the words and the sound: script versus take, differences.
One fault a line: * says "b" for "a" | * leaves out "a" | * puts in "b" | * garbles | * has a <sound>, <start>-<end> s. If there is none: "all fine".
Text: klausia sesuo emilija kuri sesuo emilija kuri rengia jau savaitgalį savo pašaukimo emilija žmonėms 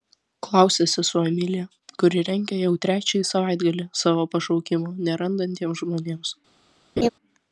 * leaves out "sesuo emilija kuri"
* puts in "trečiąjį"
* says "nerandantiems" for "emilija"
* has a laugh, 7.0-7.1 s